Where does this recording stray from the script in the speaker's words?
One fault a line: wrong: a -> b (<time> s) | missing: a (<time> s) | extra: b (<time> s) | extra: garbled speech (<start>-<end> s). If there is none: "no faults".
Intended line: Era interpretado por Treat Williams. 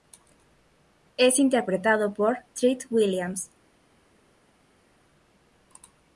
wrong: Era -> Es (1.1 s)